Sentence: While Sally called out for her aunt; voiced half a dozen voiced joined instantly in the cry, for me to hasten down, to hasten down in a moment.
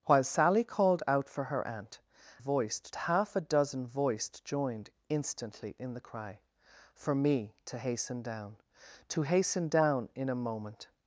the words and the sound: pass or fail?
pass